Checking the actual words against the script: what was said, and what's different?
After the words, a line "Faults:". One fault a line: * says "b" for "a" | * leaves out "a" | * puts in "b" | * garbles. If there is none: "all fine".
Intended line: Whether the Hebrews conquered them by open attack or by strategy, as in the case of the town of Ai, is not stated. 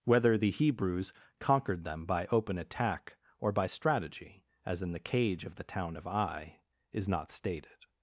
Whether the Hebrews conquered them by open attack or by strategy, as in the cage of the town of Ai, is not stated.
Faults:
* says "cage" for "case"